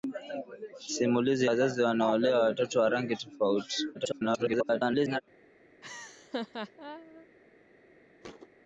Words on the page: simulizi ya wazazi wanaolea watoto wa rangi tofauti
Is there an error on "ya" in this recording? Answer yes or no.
yes